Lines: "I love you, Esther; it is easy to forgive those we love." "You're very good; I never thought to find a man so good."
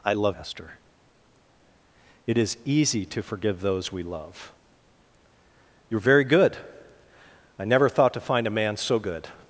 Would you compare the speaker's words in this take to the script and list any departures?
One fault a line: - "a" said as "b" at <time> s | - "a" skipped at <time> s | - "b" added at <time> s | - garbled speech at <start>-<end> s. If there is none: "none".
- "you" skipped at 0.4 s